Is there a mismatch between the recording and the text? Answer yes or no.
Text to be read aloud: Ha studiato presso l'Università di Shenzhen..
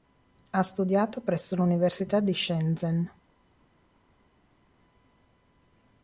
no